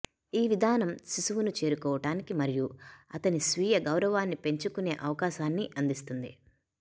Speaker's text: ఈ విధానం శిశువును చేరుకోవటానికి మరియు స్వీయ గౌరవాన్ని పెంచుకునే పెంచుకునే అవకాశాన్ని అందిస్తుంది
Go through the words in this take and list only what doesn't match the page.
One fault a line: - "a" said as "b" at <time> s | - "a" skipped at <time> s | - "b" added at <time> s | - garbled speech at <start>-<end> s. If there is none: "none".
- "అతని" added at 3.1 s
- "పెంచుకునే" skipped at 4.9 s